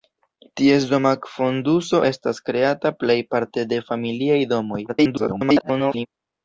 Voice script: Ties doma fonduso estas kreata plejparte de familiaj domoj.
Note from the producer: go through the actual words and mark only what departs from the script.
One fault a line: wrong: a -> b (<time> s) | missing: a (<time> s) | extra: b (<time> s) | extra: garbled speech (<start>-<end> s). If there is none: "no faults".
extra: garbled speech (4.9-6.1 s)